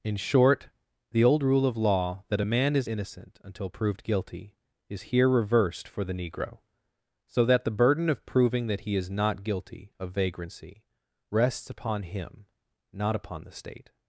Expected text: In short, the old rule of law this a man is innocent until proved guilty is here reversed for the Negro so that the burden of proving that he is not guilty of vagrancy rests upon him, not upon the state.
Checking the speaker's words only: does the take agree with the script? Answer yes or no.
no